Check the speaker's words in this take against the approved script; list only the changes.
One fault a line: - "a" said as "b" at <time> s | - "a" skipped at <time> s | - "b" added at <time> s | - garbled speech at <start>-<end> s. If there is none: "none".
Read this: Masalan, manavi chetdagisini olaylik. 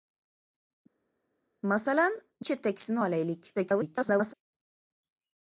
- "manavi" skipped at 2.2 s
- garbled speech at 3.5-4.3 s